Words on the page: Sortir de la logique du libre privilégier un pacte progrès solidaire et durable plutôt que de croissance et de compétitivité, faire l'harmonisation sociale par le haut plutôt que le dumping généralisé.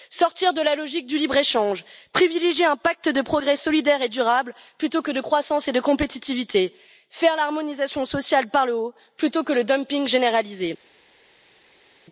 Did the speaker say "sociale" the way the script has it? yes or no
yes